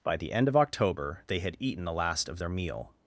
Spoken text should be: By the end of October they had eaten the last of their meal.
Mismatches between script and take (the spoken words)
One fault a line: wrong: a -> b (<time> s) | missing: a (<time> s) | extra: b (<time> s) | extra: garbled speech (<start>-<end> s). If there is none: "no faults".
no faults